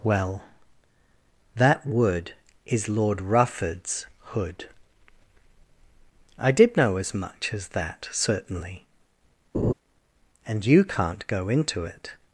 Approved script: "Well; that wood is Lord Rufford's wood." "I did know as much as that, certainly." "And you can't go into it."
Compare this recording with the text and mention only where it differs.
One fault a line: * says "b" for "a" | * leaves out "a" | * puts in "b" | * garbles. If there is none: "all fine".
* says "hood" for "wood"